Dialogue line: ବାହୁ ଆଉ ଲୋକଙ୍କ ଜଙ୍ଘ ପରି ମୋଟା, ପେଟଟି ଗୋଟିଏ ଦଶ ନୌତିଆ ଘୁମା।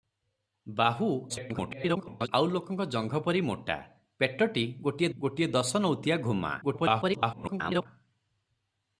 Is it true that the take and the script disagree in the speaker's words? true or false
true